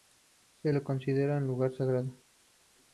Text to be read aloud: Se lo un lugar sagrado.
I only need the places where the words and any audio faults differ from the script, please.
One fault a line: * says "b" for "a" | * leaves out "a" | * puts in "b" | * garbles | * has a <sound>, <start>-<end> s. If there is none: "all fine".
* puts in "considera"